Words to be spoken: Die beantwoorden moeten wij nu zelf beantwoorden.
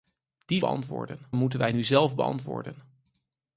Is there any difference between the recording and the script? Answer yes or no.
no